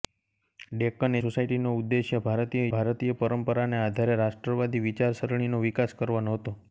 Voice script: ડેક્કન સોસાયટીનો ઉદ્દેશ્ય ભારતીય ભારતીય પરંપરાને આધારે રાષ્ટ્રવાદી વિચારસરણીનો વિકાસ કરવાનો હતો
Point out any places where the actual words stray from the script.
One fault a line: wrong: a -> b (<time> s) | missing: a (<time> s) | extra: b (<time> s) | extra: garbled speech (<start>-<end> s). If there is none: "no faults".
no faults